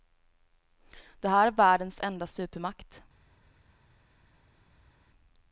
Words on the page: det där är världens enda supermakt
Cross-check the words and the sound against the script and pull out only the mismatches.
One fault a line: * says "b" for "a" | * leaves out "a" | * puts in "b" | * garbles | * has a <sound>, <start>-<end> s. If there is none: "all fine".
* says "här" for "där"